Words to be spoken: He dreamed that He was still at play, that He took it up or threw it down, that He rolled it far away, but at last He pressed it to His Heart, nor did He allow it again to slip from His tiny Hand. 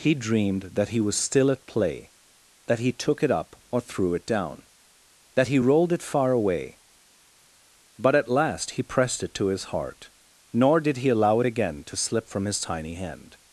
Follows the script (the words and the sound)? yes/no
yes